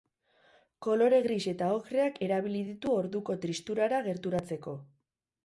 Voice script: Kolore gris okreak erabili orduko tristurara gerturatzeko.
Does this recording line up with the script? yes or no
no